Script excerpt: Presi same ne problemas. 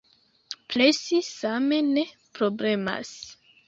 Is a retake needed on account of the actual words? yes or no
no